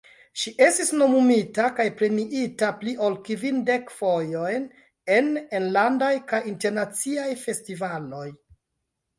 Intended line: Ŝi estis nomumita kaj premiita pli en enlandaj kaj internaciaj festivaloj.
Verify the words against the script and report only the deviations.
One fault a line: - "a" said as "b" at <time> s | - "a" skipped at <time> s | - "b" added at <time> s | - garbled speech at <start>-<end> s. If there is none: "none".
- "ol kvindek fojojn" added at 3.1 s